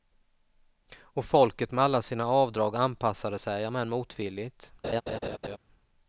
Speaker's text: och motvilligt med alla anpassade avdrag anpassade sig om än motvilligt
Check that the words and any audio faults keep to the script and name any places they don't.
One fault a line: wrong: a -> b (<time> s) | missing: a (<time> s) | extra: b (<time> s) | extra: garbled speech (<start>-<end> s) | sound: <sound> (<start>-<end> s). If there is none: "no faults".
wrong: motvilligt -> folket (1.2 s)
wrong: anpassade -> sina (2.0 s)
sound: laugh (4.8-5.6 s)